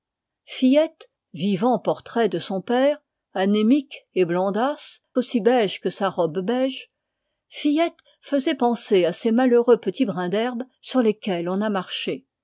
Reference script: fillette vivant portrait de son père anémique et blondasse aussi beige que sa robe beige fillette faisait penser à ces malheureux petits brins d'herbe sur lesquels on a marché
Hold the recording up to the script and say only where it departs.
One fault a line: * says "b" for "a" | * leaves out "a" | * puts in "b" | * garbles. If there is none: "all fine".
all fine